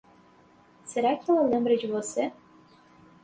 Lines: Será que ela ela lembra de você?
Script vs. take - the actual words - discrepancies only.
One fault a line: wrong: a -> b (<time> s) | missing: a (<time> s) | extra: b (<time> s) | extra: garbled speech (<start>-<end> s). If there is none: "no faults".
missing: ela (1.4 s)